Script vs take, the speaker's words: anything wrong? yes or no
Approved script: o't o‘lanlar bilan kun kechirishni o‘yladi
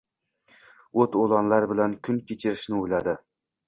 no